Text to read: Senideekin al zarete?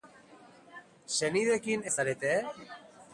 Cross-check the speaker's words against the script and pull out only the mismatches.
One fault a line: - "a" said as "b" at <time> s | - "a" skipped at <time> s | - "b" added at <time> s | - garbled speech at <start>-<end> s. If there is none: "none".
none